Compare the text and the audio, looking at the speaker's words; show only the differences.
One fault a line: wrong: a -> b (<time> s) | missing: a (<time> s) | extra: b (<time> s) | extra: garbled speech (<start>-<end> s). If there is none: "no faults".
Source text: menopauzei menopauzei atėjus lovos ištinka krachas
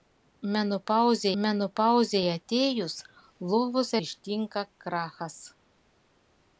no faults